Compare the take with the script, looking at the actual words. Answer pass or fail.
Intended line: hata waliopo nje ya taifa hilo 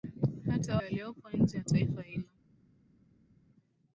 pass